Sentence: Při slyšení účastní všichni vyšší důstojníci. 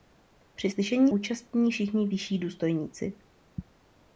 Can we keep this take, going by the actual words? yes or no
yes